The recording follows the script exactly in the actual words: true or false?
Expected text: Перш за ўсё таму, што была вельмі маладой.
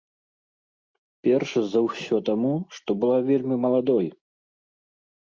true